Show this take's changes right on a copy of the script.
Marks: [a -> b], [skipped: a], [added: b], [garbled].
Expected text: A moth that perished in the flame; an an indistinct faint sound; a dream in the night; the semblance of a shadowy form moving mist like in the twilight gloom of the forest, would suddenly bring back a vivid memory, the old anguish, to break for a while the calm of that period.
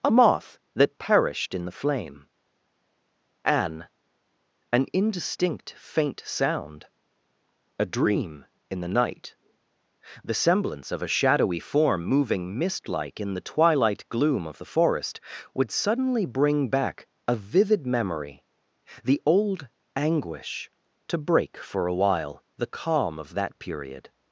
A moth that perished in the flame; an an indistinct faint sound; a dream in the night; the semblance of a shadowy form moving mist like in the twilight gloom of the forest, would suddenly bring back a vivid memory, the old anguish, to break for a while the calm of that period.